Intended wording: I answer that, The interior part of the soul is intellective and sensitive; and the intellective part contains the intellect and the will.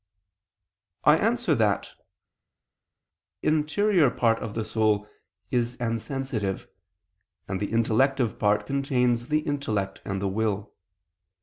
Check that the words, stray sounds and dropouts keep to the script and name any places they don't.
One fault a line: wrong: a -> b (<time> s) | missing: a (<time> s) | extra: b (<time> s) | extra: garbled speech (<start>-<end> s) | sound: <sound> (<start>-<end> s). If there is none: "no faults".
missing: The (1.9 s)
missing: intellective (5.8 s)